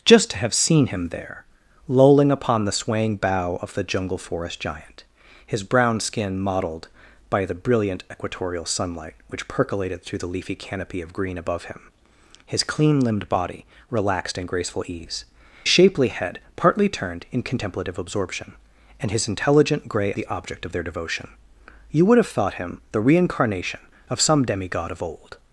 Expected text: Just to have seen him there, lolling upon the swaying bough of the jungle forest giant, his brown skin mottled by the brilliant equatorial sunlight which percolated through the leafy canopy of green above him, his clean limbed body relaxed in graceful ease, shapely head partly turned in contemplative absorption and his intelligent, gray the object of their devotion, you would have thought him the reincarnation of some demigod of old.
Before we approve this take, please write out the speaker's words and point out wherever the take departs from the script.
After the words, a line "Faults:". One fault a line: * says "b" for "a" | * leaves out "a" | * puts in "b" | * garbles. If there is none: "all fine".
Just to have seen him there, lolling upon the swaying bough of the jungle forest giant, his brown skin mottled by the brilliant equatorial sunlight which percolated through the leafy canopy of green above him, his clean limbed body relaxed in graceful ease, shapely head partly turned in contemplative absorption and his intelligent, gray the object of their devotion, you would have thought him the reincarnation of some demigod of old.
Faults:
all fine